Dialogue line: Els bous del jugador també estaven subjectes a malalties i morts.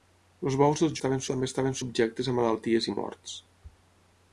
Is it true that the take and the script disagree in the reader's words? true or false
true